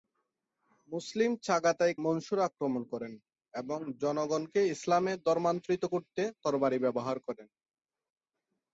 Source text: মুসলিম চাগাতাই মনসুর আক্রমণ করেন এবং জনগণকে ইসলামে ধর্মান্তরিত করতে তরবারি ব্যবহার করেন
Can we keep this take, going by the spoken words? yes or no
yes